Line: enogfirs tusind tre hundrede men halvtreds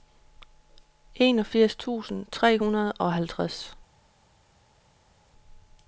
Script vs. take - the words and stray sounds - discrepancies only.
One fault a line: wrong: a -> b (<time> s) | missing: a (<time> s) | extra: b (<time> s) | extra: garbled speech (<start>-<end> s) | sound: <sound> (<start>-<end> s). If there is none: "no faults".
wrong: men -> og (2.9 s)